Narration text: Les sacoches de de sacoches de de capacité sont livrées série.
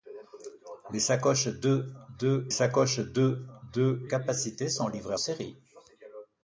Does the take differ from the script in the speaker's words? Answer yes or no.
no